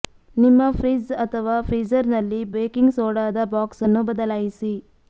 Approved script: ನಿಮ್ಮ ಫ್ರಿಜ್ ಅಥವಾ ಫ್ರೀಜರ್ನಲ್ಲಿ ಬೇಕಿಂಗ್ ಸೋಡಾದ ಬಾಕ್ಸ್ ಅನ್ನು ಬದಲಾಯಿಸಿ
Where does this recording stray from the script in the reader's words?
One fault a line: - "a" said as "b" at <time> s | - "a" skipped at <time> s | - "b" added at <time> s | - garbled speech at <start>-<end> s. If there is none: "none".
none